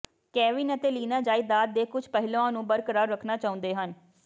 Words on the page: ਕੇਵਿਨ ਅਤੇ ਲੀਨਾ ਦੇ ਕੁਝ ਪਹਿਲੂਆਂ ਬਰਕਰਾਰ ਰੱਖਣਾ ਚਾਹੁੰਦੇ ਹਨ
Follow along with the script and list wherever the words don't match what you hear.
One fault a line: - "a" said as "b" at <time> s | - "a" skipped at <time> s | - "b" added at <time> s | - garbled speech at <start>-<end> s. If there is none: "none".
- "ਜਾਇਦਾਦ" added at 1.2 s
- "ਨੂੰ" added at 2.5 s